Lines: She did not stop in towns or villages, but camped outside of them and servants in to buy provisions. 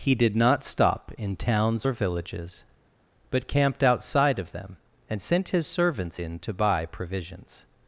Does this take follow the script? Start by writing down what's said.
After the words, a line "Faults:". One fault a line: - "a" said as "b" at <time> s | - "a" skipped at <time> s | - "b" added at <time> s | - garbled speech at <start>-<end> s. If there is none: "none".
He did not stop in towns or villages, but camped outside of them and sent his servants in to buy provisions.
Faults:
- "She" said as "He" at 0.0 s
- "sent his" added at 5.2 s